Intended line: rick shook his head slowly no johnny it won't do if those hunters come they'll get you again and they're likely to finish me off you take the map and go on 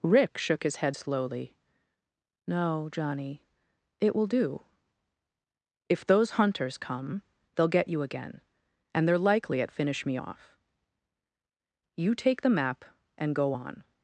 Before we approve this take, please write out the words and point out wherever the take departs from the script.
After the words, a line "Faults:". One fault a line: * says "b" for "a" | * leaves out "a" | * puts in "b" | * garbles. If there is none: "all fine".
rick shook his head slowly no johnny it will do if those hunters come they'll get you again and they're likely at finish me off you take the map and go on
Faults:
* says "will" for "won't"
* says "at" for "to"